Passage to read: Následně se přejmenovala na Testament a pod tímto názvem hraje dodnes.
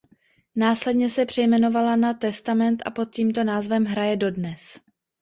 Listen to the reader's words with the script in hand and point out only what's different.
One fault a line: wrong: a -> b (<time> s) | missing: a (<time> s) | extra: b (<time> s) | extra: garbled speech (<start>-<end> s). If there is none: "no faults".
no faults